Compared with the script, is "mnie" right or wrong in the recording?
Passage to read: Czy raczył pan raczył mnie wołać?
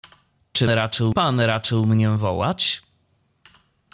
right